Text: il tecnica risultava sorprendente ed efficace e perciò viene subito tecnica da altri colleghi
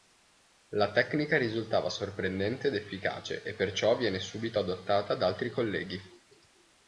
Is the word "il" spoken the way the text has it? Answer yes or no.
no